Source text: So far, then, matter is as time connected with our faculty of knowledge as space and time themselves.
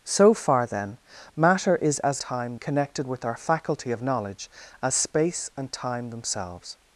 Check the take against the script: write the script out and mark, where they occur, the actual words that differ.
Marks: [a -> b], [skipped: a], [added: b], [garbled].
So far, then, matter is as time connected with our faculty of knowledge as space and time themselves.